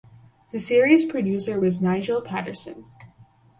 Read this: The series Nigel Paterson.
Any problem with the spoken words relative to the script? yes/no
yes